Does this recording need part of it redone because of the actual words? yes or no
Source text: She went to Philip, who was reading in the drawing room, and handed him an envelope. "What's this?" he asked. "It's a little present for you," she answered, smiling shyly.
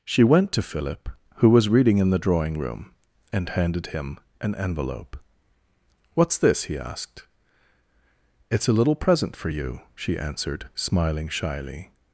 no